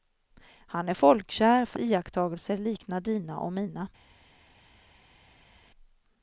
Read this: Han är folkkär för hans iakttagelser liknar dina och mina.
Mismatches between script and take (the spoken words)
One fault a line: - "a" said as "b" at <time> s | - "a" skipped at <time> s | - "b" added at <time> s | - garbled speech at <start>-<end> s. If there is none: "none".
- "hans" skipped at 1.8 s